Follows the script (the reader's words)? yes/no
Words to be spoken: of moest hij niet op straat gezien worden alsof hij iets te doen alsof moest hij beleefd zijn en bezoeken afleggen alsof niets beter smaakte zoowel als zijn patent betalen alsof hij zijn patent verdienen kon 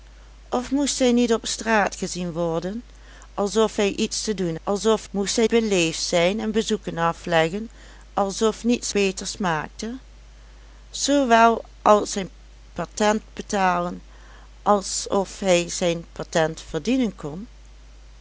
yes